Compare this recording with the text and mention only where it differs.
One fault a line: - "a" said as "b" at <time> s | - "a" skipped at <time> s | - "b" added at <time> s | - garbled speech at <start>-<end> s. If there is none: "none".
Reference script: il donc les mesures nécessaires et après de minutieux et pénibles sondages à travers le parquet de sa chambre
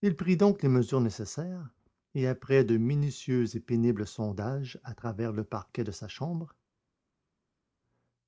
- "prit" added at 0.1 s